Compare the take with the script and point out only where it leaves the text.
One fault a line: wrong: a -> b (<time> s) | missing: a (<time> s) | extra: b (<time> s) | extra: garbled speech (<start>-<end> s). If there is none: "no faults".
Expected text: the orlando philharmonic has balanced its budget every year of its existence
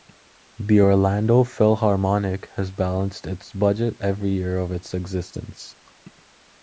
no faults